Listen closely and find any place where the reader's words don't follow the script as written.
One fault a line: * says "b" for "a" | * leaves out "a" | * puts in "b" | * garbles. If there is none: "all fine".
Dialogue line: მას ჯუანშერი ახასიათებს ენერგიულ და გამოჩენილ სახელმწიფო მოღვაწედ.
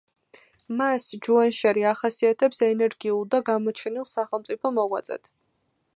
all fine